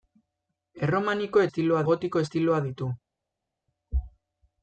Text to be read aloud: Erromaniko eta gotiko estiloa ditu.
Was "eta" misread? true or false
true